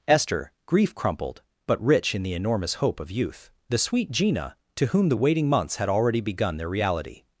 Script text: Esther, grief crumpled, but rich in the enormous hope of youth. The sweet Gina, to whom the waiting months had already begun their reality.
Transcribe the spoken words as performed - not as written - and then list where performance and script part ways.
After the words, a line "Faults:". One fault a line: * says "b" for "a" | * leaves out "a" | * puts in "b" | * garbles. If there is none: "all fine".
Esther, grief crumpled, but rich in the enormous hope of youth. The sweet Gina, to whom the waiting months had already begun their reality.
Faults:
all fine